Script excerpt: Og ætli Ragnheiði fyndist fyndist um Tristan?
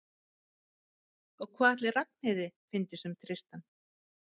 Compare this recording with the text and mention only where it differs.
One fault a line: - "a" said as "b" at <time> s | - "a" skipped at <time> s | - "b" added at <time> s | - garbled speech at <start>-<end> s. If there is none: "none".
- "hvað" added at 1.6 s
- "fyndist" skipped at 3.1 s